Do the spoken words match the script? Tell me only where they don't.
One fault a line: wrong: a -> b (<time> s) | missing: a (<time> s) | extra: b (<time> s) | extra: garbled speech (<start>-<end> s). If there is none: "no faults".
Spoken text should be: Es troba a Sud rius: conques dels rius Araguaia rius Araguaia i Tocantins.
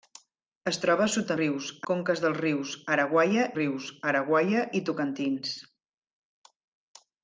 no faults